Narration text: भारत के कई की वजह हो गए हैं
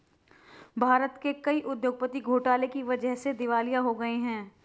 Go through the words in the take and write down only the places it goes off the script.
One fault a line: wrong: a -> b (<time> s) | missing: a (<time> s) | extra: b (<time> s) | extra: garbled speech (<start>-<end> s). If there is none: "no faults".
extra: उद्योगपति घोटाले (1.6 s)
extra: से दिवालिया (3.2 s)